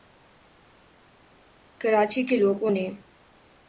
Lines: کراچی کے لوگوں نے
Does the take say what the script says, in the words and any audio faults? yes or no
yes